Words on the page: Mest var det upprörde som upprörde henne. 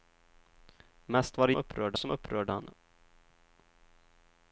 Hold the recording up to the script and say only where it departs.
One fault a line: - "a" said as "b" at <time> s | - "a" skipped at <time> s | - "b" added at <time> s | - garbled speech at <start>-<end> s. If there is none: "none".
none